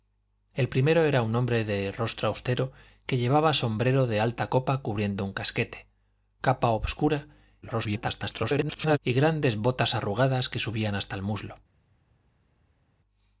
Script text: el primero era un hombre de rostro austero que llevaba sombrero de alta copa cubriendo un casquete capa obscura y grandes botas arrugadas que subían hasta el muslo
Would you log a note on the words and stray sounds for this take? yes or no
yes